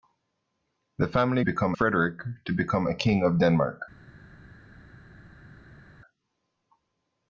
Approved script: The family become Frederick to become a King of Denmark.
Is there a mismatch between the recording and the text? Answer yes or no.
no